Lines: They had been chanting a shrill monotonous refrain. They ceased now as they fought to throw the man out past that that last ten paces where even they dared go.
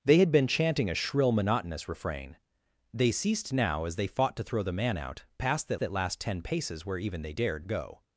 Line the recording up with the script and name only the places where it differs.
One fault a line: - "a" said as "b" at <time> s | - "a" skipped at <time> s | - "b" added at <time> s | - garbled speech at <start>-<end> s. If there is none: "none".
none